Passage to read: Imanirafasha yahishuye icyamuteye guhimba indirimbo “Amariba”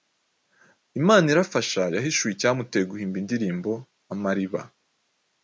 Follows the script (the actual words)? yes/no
yes